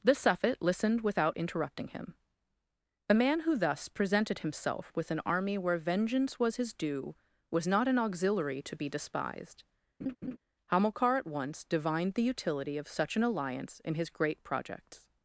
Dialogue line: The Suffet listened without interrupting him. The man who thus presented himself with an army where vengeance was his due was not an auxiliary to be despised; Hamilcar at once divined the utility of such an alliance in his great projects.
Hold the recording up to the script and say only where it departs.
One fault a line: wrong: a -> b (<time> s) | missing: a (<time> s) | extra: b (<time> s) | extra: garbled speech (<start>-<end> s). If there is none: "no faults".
no faults